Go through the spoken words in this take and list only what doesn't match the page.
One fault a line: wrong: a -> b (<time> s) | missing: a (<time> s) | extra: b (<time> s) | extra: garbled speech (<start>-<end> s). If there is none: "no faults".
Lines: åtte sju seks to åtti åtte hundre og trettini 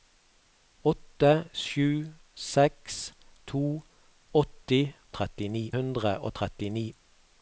wrong: åtte -> trettini (5.2 s)